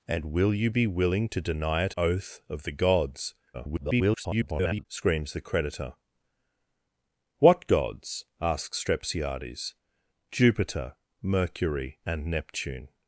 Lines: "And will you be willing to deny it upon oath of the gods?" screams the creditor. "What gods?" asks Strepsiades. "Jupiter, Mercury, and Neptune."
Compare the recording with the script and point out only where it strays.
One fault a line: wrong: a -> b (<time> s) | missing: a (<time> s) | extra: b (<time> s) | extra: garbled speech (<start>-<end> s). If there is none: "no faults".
missing: upon (1.9 s)
extra: garbled speech (3.5-4.9 s)